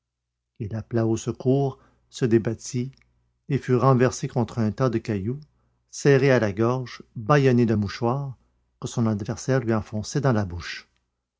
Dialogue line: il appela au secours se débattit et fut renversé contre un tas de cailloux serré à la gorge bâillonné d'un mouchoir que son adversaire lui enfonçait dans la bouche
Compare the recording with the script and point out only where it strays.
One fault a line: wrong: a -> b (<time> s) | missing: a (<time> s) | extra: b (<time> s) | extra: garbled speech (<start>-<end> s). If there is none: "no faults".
no faults